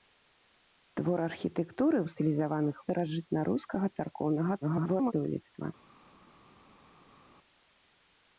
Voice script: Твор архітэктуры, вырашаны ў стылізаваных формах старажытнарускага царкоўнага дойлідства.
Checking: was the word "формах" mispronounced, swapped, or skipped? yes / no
yes